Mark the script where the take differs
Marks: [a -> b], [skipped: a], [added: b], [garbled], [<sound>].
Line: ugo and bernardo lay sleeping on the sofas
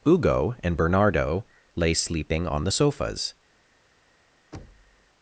ugo and bernardo lay sleeping on the sofas [thud]